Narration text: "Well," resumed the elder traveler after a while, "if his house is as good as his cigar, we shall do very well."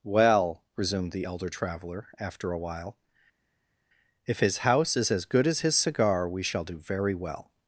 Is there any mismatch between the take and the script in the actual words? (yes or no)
no